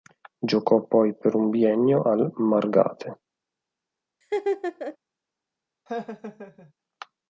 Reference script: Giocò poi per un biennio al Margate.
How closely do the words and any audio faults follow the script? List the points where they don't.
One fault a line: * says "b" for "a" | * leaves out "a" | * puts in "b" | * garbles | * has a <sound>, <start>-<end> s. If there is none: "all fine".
* has a laugh, 4.2-5.0 s
* has a laugh, 5.9-6.7 s